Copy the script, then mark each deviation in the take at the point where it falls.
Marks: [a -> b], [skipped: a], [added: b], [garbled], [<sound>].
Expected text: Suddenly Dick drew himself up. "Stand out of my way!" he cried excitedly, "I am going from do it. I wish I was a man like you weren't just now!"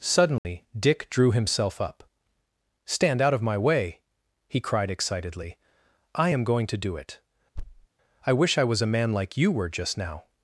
Suddenly [dropout] Dick drew himself up. "Stand out of my way!" he cried excitedly, "I am going [from -> to] do it. [thud] I wish I was a man like you [weren't -> were] just now!"